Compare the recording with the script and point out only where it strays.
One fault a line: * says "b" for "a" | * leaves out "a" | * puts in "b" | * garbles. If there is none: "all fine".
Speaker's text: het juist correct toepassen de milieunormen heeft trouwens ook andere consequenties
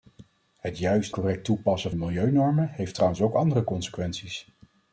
all fine